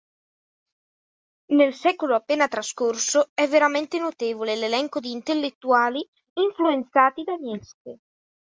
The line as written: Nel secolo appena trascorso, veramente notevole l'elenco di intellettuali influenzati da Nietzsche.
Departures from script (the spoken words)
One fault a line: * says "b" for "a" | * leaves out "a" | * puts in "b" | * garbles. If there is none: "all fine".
* puts in "è"